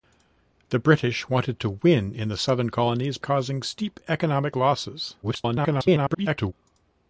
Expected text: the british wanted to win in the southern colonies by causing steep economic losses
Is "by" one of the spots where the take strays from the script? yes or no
yes